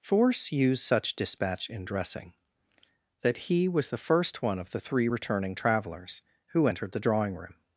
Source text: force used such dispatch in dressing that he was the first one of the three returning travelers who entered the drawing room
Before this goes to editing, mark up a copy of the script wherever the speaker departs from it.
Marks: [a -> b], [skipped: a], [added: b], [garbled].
force used such dispatch in dressing that he was the first one of the three returning travelers who entered the drawing room